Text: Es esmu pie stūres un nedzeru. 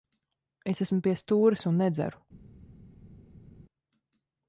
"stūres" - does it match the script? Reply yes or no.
yes